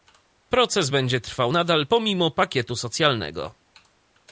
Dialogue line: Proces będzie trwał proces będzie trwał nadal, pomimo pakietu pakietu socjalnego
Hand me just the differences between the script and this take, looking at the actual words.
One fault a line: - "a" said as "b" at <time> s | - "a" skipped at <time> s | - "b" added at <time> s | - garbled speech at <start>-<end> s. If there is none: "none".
- "proces będzie trwał" skipped at 1.5 s
- "pakietu" skipped at 2.7 s